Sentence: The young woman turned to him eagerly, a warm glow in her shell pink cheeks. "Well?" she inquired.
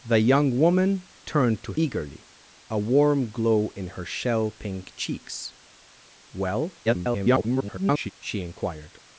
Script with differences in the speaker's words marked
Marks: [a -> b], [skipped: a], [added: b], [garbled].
The young woman turned to [skipped: him] eagerly, a warm glow in her shell pink cheeks. "Well?" [garbled] she inquired.